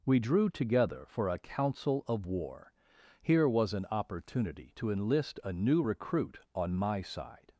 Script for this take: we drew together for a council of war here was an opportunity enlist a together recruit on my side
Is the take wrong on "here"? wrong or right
right